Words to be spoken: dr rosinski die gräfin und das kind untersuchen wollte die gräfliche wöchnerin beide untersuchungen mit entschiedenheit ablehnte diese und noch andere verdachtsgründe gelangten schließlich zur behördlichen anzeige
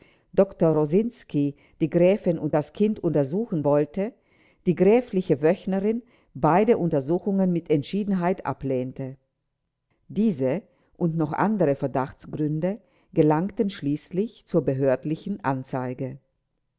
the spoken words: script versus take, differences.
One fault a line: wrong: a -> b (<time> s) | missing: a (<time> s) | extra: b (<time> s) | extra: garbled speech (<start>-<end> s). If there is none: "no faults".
no faults